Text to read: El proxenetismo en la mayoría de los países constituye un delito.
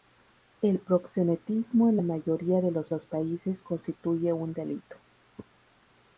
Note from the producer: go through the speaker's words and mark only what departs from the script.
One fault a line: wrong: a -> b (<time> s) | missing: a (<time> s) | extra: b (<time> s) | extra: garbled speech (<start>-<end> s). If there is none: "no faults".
extra: los (2.9 s)